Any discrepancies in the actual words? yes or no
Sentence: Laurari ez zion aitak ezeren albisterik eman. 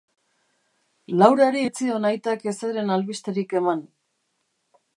no